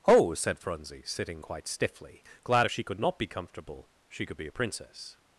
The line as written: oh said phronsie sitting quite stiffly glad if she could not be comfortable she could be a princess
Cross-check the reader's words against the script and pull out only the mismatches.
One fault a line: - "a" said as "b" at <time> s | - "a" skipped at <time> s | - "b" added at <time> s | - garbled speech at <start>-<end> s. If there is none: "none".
none